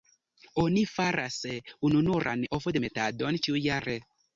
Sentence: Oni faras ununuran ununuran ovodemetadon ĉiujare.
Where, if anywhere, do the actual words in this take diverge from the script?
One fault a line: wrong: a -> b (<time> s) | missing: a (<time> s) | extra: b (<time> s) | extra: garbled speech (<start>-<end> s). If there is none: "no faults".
missing: ununuran (2.5 s)